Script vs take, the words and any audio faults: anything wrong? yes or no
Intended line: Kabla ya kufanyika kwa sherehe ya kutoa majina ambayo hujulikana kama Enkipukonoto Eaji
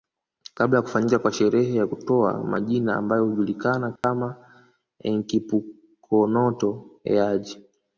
yes